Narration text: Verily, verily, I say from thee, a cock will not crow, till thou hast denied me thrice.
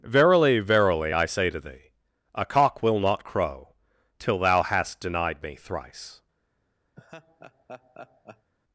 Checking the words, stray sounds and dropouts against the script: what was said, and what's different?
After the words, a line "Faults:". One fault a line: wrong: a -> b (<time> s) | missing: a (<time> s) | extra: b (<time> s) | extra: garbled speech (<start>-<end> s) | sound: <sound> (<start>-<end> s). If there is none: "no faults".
Verily, verily, I say to thee, a cock will not crow, till thou hast denied me thrice.
Faults:
wrong: from -> to (1.5 s)
sound: laugh (7.0-8.5 s)